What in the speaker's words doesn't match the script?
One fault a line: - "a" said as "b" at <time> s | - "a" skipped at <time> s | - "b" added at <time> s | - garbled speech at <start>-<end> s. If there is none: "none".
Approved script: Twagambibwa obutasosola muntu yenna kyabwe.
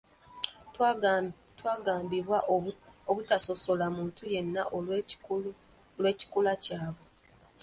- "olw'ekikula" added at 6.0 s